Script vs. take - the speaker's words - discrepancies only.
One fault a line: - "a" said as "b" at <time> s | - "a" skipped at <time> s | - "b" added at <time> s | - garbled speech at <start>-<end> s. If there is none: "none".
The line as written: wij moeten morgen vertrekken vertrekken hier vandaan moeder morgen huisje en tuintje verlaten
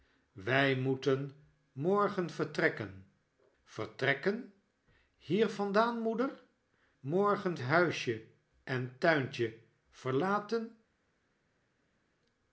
none